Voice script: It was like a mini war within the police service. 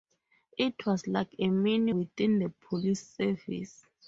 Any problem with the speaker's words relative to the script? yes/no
yes